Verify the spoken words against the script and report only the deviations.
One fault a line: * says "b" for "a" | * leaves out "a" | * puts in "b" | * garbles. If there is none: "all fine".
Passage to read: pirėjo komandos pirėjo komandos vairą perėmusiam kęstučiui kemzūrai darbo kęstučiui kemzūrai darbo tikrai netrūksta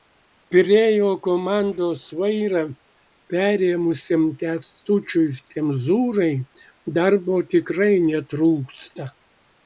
* leaves out "pirėjo komandos"
* leaves out "kęstučiui kemzūrai darbo"